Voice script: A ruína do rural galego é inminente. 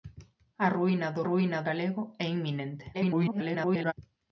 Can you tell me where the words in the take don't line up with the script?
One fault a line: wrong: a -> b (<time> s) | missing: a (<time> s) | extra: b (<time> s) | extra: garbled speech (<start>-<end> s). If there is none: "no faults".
wrong: rural -> ruína (1.3 s)
extra: garbled speech (2.9-3.9 s)